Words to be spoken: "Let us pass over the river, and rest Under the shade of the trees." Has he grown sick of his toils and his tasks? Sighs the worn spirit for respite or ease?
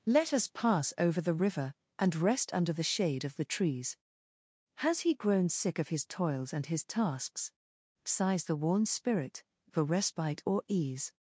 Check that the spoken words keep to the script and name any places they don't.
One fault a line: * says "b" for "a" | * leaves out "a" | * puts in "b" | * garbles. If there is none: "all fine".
all fine